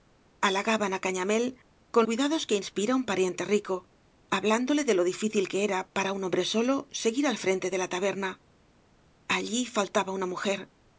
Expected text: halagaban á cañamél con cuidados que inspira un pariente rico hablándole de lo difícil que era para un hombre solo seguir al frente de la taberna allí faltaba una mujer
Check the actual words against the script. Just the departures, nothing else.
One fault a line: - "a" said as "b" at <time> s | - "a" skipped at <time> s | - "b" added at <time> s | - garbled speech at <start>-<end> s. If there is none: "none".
none